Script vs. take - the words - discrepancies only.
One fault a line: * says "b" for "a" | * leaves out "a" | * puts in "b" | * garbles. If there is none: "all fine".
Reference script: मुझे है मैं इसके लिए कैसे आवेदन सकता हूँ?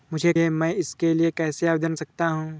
all fine